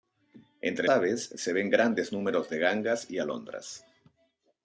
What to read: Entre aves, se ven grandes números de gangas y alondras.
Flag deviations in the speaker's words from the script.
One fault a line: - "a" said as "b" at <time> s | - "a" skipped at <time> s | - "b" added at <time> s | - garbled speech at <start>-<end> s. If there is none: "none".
none